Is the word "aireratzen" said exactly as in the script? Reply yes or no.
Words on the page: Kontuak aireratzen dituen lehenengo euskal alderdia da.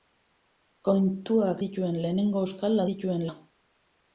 no